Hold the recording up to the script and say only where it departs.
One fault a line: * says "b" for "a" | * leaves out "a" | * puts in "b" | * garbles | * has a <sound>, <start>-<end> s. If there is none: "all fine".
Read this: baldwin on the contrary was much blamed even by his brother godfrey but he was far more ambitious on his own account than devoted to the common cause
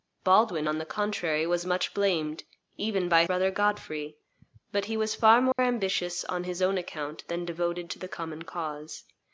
* leaves out "his"
* has a dropout, 5.5-5.6 s